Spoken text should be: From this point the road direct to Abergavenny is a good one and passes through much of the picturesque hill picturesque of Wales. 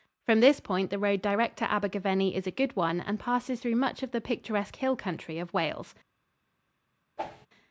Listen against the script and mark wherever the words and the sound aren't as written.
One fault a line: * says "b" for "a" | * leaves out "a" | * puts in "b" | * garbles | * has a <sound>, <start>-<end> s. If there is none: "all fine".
* says "country" for "picturesque"
* has a whoosh, 7.2-7.5 s